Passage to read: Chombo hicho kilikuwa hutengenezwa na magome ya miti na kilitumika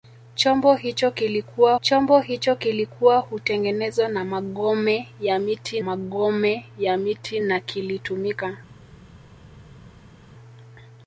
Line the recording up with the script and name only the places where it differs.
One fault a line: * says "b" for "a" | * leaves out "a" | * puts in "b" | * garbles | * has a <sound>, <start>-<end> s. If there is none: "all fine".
* puts in "chombo hicho kilikuwa"
* puts in "magome ya miti"